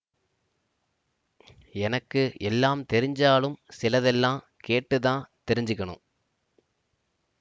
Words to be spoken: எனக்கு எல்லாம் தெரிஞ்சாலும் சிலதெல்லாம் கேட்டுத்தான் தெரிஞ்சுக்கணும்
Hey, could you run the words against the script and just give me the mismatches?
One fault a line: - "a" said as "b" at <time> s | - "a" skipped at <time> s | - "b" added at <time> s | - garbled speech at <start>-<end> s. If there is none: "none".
none